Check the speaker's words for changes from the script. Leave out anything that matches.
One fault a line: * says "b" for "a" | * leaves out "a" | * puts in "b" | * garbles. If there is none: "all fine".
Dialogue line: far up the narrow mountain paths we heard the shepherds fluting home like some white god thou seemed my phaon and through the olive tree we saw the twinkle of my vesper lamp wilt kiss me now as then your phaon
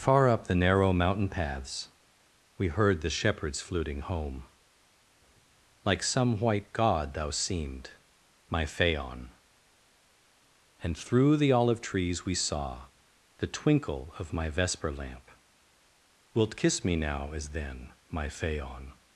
* says "trees" for "tree"
* says "my" for "your"